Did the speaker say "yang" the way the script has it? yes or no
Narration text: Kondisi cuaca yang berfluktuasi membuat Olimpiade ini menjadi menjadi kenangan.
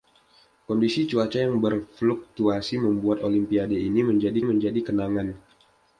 yes